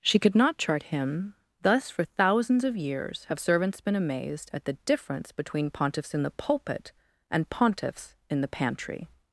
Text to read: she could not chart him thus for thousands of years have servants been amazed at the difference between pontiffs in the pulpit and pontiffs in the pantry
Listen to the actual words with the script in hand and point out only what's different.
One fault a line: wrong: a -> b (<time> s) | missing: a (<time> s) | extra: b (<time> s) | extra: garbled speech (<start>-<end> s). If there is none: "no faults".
no faults